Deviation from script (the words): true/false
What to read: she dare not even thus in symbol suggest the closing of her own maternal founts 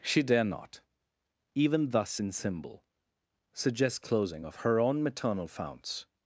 true